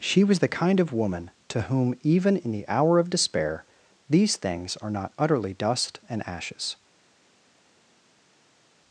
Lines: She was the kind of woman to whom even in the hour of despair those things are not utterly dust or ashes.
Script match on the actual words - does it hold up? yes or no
no